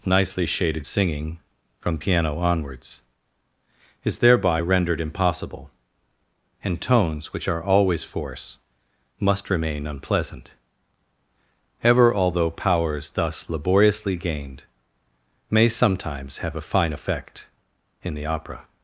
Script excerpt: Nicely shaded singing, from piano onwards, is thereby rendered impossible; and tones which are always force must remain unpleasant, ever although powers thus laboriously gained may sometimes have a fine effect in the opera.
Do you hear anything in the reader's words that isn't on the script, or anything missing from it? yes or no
no